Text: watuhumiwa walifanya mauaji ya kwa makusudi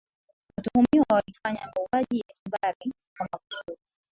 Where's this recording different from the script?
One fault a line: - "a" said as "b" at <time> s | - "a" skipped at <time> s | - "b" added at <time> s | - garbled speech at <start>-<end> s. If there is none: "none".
- "kimbari" added at 2.3 s